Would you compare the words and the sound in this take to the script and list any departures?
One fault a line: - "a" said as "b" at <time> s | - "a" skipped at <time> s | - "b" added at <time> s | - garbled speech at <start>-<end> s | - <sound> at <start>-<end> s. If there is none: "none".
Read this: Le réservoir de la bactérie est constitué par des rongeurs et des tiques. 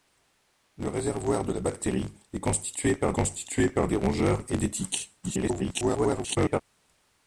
- "constitué par" added at 3.1 s
- garbled speech at 5.2-6.6 s